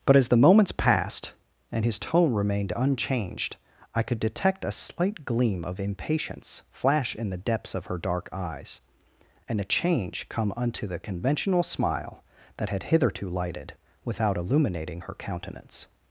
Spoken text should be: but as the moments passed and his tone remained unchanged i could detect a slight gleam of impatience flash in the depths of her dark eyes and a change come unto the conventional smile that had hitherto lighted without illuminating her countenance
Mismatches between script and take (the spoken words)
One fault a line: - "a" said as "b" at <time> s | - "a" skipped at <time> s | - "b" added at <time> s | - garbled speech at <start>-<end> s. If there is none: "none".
none